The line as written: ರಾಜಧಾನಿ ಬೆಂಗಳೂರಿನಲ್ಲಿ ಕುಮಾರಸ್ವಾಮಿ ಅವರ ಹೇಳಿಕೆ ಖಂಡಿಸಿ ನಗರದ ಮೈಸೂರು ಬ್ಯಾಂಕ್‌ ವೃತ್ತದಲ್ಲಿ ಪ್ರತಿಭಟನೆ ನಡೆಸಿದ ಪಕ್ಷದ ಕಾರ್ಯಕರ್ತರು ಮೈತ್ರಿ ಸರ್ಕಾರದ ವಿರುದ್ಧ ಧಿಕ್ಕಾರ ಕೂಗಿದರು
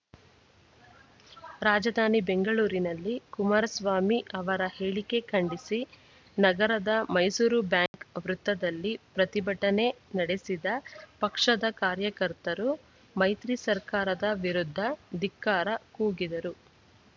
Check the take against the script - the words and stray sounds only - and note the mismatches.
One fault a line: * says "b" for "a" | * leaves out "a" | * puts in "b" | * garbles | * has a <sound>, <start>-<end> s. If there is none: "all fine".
* has a dropout, 7.9-7.9 s